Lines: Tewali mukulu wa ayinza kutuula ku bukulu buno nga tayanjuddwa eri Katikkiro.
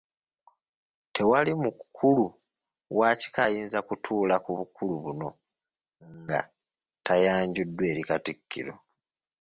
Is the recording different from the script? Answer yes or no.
yes